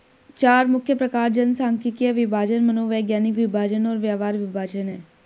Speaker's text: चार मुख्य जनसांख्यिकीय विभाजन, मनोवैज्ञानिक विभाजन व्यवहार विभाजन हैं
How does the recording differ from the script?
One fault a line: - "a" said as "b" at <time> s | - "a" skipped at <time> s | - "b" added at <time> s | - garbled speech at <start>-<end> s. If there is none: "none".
- "प्रकार" added at 0.9 s
- "और" added at 3.9 s